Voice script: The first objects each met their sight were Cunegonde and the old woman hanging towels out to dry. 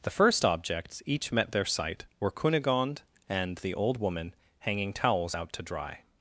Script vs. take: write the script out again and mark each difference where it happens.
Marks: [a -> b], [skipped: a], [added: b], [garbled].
The first objects each met their sight were Cunegonde and the old woman hanging towels out to dry.